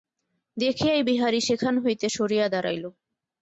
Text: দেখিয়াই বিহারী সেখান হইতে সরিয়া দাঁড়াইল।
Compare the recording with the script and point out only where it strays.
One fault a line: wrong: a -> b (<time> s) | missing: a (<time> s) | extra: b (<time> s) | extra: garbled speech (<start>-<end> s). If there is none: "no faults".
no faults